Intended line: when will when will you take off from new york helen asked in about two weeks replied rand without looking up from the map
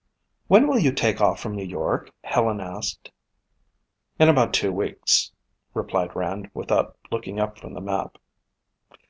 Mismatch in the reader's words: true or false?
true